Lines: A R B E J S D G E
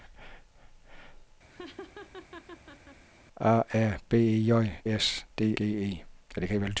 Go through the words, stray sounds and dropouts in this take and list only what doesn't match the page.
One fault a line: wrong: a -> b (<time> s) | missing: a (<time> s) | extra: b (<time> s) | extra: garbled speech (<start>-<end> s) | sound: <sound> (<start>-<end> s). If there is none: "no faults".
sound: laugh (1.5-3.0 s)